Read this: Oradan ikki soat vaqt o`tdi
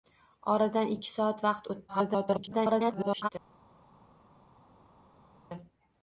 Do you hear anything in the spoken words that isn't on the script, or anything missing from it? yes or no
yes